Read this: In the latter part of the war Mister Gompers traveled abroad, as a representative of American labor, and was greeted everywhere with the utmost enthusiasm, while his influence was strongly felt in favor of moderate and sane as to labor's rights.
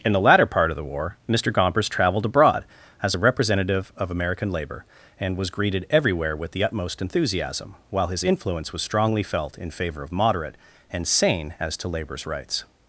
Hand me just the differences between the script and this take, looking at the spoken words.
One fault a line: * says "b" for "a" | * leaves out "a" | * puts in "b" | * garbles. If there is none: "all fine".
all fine